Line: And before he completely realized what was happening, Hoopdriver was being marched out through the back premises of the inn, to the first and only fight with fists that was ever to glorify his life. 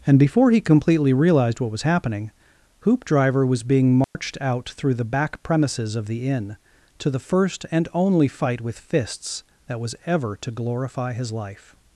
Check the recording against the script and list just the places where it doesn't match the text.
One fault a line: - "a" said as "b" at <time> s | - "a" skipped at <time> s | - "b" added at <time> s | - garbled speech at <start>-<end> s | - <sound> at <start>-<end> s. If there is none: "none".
- dropout at 4.0-4.1 s